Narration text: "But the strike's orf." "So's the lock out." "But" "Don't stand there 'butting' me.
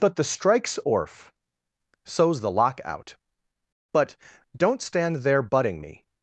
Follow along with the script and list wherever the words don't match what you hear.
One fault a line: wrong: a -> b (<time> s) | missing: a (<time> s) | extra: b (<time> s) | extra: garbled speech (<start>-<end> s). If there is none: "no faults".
no faults